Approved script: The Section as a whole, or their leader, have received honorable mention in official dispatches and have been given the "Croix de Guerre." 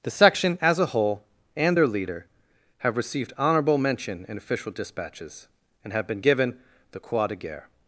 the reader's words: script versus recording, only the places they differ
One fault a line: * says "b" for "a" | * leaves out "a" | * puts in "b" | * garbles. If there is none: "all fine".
* says "and" for "or"